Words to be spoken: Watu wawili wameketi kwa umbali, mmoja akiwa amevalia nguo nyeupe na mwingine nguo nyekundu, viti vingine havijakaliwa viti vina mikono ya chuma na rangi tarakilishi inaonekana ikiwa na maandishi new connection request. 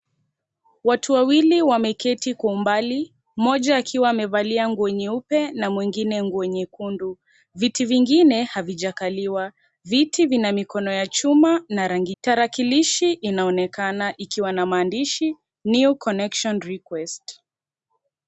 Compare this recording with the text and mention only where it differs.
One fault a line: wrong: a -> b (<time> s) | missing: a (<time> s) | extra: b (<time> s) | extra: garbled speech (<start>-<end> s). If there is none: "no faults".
no faults